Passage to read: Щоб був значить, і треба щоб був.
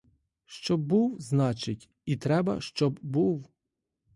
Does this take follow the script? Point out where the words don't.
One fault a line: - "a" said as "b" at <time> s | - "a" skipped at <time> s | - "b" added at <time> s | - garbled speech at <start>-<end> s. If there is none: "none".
none